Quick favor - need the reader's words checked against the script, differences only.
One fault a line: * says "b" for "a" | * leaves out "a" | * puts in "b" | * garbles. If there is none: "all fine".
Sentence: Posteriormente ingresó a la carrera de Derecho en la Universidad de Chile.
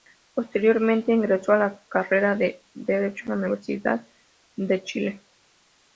all fine